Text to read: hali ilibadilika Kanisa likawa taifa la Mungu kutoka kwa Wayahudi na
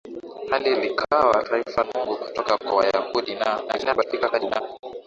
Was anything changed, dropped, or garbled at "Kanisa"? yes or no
yes